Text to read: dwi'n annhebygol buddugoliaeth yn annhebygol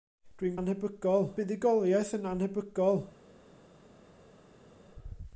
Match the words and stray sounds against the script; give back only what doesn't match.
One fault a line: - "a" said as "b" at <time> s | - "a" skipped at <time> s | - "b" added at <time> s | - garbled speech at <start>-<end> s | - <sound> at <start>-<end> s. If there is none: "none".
none